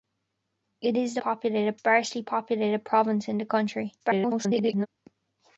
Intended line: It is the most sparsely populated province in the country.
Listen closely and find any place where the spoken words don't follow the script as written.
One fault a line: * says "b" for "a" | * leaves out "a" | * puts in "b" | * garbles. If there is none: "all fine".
* says "populated" for "most"
* garbles